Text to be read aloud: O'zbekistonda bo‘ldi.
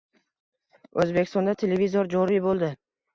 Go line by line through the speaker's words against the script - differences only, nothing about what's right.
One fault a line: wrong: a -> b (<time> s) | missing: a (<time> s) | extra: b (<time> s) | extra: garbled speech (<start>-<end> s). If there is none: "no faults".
extra: televizor joriy (1.6 s)